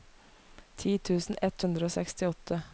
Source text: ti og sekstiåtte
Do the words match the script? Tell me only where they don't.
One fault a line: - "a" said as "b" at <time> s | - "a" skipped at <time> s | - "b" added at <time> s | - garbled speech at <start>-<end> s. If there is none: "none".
- "tusen ett hundre" added at 1.0 s